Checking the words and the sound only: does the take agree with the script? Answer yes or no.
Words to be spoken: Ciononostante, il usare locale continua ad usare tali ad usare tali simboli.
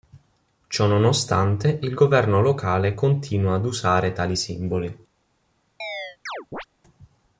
no